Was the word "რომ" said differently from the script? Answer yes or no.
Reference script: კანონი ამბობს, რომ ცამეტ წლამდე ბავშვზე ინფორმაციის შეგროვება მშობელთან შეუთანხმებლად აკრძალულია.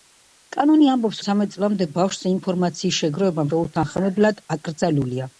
yes